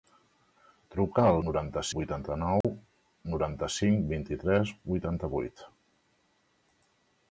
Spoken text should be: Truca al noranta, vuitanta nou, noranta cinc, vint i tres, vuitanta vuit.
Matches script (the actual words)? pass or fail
pass